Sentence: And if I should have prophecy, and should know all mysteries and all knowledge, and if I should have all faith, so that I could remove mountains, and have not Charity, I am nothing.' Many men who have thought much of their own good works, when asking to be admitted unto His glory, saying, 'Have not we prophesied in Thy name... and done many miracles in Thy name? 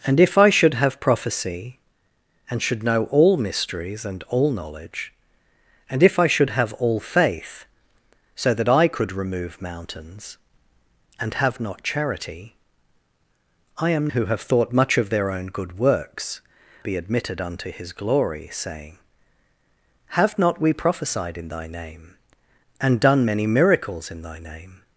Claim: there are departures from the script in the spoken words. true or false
true